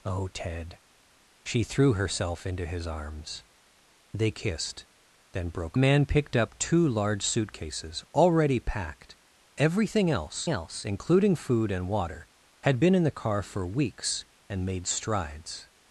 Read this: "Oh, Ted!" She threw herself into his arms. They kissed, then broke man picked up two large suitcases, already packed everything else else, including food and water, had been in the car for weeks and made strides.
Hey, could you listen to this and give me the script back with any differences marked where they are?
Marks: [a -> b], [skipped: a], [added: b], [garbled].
"Oh, Ted!" She threw herself into his arms. They kissed, then broke man picked up two large suitcases, already packed everything else else, including food and water, had been in the car for weeks and made strides.